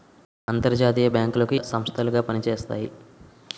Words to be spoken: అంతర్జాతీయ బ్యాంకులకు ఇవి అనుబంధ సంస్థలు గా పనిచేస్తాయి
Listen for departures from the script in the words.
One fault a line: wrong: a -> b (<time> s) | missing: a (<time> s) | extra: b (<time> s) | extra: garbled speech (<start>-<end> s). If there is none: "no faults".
missing: ఇవి అనుబంధ (1.6 s)